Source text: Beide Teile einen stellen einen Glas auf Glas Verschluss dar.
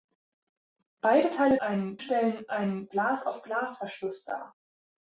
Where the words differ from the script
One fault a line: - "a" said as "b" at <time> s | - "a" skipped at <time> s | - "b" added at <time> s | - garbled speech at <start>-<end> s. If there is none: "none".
none